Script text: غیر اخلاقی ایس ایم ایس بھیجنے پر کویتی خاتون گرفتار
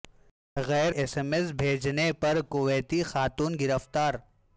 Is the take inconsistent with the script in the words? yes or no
yes